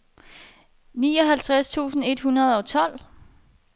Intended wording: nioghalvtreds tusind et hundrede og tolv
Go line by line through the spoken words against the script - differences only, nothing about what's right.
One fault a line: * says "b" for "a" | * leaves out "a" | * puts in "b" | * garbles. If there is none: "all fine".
all fine